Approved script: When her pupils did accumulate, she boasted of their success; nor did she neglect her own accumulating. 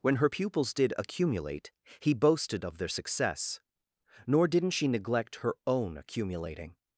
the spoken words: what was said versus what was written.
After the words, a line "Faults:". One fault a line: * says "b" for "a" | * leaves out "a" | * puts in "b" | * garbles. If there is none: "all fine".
When her pupils did accumulate, he boasted of their success; nor didn't she neglect her own accumulating.
Faults:
* says "he" for "she"
* says "didn't" for "did"